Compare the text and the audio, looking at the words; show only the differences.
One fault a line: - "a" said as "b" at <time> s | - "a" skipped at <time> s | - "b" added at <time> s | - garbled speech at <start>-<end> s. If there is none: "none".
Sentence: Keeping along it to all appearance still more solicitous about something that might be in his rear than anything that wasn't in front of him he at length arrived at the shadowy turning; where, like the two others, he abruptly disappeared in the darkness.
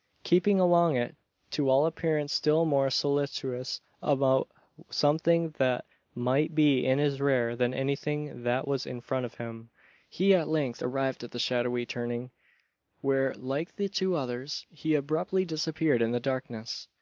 - "wasn't" said as "was" at 8.7 s